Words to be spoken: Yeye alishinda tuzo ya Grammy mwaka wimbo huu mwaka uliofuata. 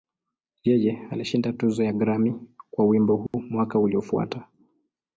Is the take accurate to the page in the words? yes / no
no